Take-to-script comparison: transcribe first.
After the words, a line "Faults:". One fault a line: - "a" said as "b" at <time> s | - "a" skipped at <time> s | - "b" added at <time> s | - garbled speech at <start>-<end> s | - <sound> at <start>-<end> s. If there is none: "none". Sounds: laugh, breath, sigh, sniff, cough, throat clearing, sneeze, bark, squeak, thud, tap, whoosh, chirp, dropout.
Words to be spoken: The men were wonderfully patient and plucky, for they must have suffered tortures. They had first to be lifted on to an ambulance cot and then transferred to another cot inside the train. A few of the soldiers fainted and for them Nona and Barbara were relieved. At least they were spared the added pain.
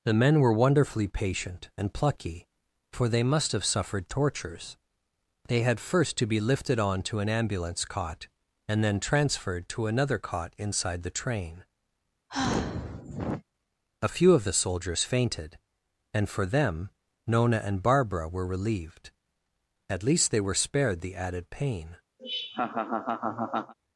The men were wonderfully patient and plucky, for they must have suffered tortures. They had first to be lifted on to an ambulance cot and then transferred to another cot inside the train. A few of the soldiers fainted and for them Nona and Barbara were relieved. At least they were spared the added pain.
Faults:
- sigh at 12.3-13.4 s
- laugh at 22.2-23.7 s